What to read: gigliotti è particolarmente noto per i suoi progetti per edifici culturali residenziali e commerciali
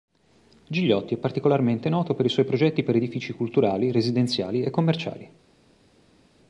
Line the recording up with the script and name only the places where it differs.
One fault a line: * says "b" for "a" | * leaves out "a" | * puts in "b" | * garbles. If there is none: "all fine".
all fine